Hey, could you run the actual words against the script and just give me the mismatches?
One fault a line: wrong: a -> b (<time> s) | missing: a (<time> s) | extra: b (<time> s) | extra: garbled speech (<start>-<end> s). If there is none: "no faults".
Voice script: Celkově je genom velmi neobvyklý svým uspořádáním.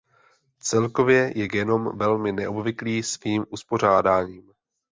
no faults